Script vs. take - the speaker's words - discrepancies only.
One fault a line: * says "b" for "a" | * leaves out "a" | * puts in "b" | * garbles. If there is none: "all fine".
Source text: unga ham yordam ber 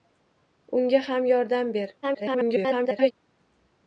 * garbles